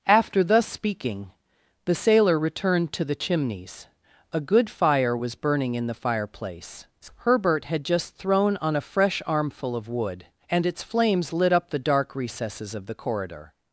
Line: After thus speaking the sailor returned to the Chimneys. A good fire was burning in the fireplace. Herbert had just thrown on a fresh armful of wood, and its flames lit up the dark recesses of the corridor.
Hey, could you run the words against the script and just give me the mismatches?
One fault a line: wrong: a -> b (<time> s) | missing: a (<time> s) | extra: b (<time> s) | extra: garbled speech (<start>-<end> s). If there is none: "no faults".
no faults